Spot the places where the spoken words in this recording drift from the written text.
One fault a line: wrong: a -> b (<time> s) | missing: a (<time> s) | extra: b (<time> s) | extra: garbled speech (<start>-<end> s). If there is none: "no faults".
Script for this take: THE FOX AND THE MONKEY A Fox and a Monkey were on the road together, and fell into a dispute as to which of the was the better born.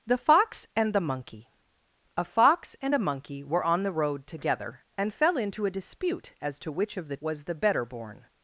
no faults